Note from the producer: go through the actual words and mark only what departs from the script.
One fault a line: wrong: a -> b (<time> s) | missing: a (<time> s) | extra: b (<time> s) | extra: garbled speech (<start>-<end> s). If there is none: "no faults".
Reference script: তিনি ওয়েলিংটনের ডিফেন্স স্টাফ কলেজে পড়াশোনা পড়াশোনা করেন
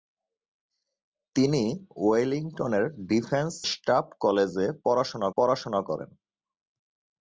no faults